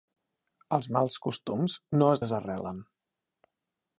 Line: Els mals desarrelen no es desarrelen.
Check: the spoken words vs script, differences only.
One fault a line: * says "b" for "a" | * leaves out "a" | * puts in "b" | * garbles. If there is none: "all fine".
* says "costums" for "desarrelen"